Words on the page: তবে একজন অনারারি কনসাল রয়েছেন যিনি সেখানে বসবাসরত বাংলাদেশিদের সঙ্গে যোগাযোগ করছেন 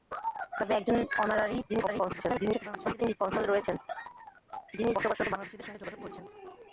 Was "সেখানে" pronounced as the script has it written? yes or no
no